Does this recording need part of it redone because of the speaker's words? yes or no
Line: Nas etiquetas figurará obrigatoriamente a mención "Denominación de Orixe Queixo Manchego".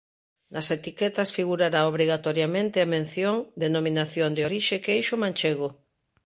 no